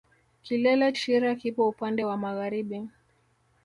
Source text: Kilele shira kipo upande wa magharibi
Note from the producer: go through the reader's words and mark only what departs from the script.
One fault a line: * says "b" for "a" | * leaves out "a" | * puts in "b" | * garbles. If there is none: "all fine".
all fine